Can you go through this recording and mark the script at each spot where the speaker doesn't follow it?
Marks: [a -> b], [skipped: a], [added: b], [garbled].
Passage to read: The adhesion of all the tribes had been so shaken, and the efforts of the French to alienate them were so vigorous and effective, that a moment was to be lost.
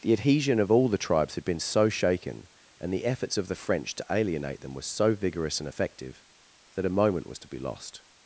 The adhesion of all the tribes had been so shaken, and the efforts of the French to alienate them were so vigorous and effective, that a moment was to be lost.